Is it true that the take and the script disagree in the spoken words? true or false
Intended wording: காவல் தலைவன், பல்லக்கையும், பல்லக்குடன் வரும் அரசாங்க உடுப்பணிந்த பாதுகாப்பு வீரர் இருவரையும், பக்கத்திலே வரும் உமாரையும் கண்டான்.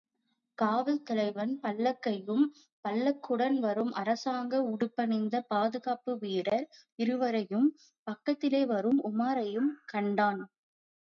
false